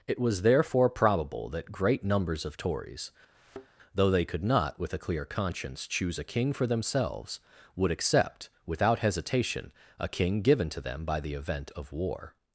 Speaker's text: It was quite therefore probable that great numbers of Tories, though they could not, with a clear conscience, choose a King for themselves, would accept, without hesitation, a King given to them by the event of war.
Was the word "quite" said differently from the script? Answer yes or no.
yes